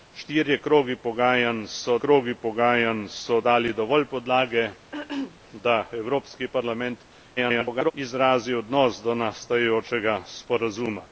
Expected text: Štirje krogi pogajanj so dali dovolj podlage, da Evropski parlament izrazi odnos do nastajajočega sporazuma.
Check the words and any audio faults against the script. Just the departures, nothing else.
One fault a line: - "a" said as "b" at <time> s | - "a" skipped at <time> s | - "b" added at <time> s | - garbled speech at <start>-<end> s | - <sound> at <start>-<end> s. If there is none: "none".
- "krogi pogajanj so" added at 2.0 s
- throat clearing at 4.9-5.4 s
- garbled speech at 7.4-7.9 s